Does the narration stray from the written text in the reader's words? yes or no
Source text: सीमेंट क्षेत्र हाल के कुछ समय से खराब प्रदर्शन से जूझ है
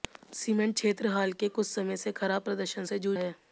no